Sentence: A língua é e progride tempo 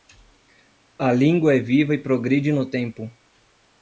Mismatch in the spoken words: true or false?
true